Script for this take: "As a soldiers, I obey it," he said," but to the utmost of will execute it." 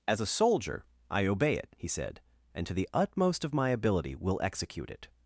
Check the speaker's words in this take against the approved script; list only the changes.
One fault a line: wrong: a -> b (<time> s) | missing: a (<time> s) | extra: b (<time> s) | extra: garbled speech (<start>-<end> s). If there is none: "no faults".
wrong: soldiers -> soldier (0.3 s)
wrong: but -> and (2.5 s)
extra: my ability (3.5 s)